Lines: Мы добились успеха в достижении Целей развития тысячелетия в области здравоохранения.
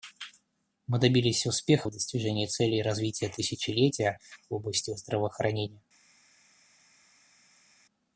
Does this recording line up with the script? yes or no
yes